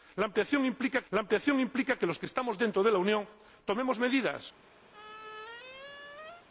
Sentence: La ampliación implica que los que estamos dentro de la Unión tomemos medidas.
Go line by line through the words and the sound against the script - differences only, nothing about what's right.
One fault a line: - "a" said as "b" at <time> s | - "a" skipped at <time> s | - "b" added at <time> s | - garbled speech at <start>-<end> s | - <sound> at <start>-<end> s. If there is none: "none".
- "la ampliación implica" added at 1.1 s
- squeak at 4.9-6.5 s